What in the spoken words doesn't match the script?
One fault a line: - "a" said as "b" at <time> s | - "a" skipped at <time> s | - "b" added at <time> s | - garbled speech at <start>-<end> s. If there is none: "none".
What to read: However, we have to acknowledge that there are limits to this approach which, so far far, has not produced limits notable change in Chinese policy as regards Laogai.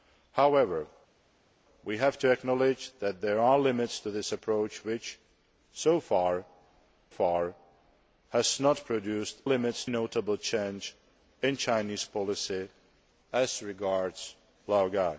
none